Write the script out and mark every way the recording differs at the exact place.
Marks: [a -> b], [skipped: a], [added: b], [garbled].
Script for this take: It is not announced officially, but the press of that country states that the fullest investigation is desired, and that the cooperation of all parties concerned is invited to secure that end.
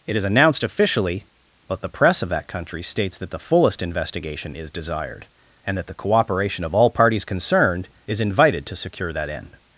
It is [skipped: not] announced officially, but the press of that country states that the fullest investigation is desired, and that the cooperation of all parties concerned is invited to secure that end.